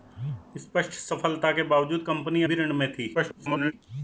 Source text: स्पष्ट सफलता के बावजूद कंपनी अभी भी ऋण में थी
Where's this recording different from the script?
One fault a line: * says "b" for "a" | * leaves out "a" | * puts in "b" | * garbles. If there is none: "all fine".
* leaves out "अभी"
* garbles